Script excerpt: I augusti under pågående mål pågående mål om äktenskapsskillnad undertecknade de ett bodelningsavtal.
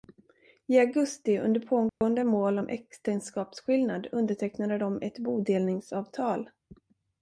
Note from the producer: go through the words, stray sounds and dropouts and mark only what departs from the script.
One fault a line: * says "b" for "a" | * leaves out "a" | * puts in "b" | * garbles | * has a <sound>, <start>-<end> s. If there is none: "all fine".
* has a dropout, 1.9-2.0 s
* leaves out "pågående mål"